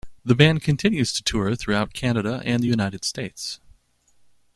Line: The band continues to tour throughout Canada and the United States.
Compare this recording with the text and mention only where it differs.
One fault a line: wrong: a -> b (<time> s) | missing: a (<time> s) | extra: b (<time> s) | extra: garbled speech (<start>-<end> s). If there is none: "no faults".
no faults